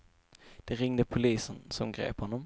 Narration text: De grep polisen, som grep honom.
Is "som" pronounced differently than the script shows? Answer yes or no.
no